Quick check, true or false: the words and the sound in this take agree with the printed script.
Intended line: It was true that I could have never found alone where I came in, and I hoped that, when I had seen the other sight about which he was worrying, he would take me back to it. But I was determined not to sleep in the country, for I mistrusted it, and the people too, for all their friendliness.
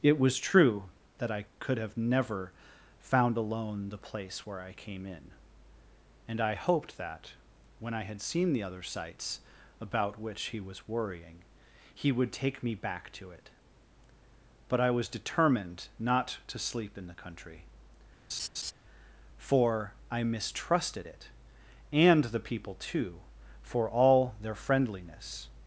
false